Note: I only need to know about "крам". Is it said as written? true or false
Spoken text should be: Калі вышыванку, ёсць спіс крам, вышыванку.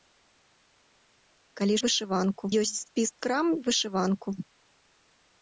true